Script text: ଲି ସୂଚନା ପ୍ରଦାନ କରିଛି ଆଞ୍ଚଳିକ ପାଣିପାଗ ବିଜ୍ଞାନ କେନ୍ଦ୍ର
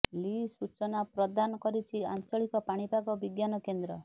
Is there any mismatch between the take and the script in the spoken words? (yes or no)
no